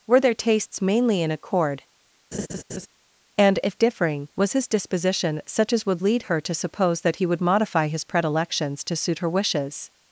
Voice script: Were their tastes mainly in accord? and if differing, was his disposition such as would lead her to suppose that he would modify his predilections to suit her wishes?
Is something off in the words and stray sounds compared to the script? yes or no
yes